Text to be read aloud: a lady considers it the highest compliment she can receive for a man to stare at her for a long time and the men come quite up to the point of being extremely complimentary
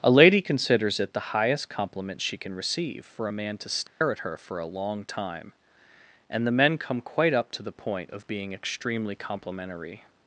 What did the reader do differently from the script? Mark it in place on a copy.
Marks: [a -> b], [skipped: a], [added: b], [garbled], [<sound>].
a lady considers it the highest compliment she can receive for a man to stare [dropout] at her for a long time and the men come quite up to the point of being extremely complimentary